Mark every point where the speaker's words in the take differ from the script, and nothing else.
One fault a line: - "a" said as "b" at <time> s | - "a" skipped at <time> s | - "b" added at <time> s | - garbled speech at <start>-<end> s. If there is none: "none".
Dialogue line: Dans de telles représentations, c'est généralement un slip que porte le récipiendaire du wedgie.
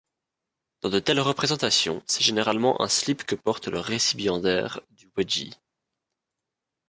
none